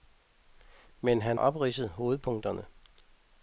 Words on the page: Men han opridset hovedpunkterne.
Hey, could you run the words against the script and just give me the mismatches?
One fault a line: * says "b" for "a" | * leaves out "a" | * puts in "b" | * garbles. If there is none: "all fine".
all fine